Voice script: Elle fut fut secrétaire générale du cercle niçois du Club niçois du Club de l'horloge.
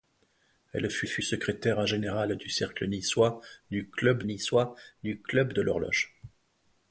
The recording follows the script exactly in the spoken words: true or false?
true